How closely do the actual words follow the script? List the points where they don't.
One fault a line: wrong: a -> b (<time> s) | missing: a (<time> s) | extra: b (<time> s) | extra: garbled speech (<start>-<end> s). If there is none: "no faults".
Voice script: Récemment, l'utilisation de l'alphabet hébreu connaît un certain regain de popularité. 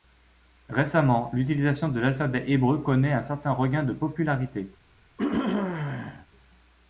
no faults